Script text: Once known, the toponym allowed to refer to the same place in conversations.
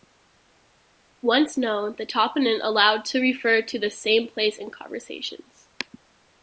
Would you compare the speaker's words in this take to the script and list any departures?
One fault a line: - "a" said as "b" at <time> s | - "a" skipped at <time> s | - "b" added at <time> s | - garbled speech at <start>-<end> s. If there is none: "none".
none